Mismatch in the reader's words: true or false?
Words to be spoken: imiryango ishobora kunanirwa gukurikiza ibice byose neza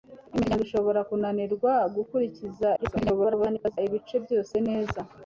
true